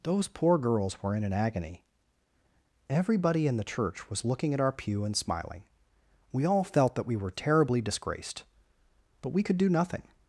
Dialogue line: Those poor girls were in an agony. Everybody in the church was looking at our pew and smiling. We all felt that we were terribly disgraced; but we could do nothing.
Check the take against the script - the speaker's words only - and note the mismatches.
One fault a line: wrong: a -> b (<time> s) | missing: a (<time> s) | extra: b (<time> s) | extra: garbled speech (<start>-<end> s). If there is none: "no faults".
no faults